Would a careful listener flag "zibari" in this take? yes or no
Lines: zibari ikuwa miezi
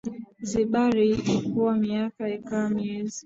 no